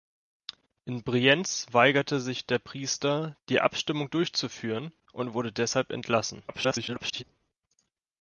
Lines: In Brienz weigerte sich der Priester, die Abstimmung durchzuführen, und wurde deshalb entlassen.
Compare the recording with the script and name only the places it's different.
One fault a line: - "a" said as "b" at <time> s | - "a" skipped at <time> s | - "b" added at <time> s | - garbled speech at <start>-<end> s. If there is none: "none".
- garbled speech at 6.5-7.2 s